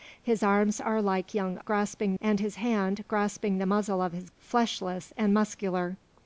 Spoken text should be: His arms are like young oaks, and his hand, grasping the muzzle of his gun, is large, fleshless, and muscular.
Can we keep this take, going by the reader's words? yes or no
no